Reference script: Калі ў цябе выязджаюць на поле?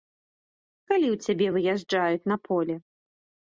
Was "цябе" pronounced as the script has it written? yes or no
yes